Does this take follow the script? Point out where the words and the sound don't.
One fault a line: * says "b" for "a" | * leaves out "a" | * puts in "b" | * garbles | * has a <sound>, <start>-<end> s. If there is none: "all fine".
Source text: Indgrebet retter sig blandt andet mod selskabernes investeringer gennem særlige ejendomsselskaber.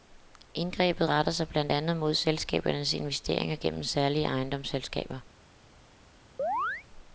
* has a chirp, 6.4-6.9 s